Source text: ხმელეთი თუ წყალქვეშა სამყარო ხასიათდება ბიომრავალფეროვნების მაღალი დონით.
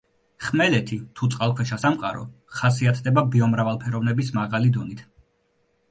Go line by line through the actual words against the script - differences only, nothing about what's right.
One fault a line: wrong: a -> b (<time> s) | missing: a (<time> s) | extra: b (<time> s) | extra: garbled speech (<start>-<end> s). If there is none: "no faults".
no faults